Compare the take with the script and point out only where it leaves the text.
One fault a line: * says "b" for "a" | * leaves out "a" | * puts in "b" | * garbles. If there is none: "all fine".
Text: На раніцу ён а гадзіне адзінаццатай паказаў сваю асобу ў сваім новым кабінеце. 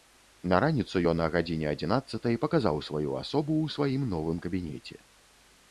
all fine